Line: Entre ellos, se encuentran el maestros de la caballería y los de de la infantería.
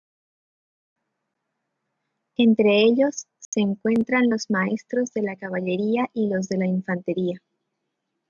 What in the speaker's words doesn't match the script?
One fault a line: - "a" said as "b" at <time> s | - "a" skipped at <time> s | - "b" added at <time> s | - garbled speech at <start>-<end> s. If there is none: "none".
- "el" said as "los" at 4.3 s
- "de" skipped at 6.6 s